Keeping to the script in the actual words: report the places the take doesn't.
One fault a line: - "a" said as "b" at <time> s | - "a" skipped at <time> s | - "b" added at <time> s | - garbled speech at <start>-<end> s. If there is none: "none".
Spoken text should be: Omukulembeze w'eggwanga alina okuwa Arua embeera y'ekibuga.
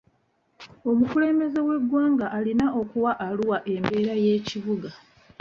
none